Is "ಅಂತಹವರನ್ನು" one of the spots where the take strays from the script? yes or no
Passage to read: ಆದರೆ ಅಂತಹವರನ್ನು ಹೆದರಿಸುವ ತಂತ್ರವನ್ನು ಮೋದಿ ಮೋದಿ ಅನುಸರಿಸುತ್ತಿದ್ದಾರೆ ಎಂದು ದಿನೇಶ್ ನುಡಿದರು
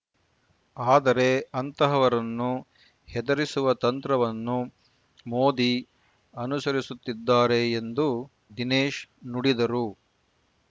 no